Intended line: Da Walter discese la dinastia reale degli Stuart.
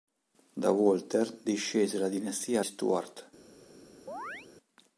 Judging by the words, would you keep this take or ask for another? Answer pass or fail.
fail